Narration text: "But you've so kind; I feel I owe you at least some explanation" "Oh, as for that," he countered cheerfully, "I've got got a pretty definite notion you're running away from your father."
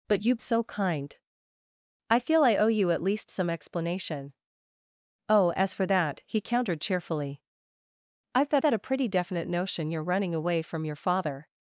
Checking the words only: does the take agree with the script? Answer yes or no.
yes